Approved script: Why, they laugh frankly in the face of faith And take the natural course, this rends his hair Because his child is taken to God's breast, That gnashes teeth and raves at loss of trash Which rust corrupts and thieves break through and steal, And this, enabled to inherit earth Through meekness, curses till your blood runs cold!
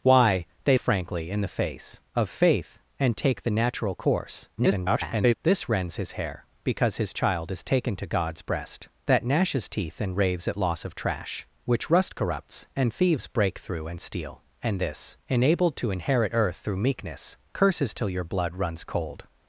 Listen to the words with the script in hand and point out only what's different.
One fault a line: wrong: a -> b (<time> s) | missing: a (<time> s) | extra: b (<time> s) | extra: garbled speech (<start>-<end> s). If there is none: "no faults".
missing: laugh (0.8 s)
extra: garbled speech (4.6-5.3 s)